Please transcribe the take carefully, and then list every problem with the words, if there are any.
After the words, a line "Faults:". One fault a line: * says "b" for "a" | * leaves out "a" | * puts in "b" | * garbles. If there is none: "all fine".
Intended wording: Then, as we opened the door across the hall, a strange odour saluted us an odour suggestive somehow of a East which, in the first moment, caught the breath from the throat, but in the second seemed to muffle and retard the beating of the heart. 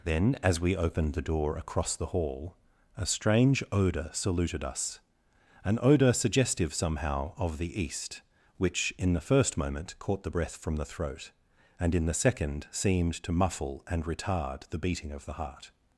Then, as we opened the door across the hall, a strange odour saluted us an odour suggestive somehow of the East which, in the first moment, caught the breath from the throat, and in the second seemed to muffle and retard the beating of the heart.
Faults:
* says "the" for "a"
* says "and" for "but"